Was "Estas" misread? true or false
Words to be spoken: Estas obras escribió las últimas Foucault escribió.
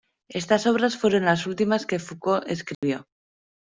false